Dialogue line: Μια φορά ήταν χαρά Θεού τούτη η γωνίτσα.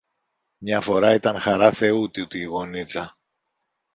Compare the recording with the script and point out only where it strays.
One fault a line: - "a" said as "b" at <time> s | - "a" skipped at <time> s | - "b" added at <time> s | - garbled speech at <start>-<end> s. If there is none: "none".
none